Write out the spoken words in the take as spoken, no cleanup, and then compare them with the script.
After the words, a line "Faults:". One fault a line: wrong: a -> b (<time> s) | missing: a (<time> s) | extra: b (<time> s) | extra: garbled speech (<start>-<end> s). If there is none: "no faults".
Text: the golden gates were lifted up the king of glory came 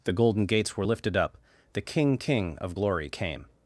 the golden gates were lifted up the king king of glory came
Faults:
extra: king (2.2 s)